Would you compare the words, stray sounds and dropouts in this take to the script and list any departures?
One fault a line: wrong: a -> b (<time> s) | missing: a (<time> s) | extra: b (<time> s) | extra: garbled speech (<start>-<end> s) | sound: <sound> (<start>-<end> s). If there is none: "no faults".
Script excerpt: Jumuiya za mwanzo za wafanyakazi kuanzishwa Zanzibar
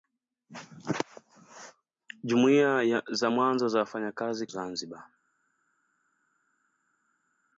missing: kuanzishwa (4.5 s)